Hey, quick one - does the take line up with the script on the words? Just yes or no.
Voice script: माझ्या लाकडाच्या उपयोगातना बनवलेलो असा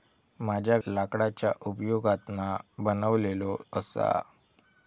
yes